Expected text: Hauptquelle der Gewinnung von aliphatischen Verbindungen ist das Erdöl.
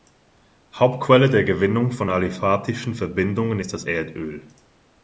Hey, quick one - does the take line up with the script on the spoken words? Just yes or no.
yes